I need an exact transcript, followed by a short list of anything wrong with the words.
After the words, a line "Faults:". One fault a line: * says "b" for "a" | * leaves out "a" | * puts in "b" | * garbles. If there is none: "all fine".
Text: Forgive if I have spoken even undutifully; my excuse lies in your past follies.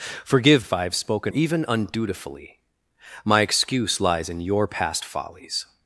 Forgive if I have spoken even undutifully; my excuse lies in your past follies.
Faults:
all fine